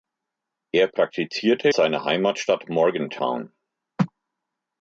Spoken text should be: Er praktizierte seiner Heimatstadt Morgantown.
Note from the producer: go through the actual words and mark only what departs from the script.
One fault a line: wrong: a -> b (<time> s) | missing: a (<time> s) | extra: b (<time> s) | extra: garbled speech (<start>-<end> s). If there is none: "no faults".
no faults